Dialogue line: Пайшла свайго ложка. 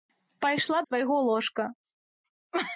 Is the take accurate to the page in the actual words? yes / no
yes